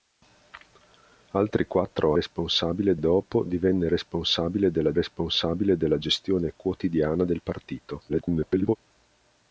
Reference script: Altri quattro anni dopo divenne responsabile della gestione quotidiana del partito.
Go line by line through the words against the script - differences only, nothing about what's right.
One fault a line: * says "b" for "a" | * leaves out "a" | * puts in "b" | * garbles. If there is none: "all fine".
* says "responsabile" for "anni"
* puts in "responsabile della"
* garbles